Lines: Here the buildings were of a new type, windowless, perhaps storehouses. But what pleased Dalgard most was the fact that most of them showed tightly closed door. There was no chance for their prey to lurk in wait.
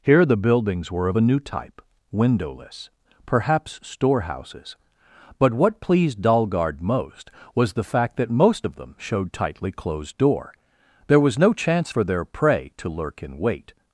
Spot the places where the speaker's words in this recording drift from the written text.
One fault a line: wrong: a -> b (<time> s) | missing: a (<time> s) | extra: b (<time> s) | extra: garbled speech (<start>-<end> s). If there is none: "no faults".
no faults